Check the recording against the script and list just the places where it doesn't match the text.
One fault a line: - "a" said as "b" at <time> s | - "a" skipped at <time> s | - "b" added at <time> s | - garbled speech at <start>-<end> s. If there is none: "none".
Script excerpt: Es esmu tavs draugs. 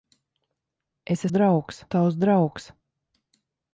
- "esmu" said as "draugs" at 1.3 s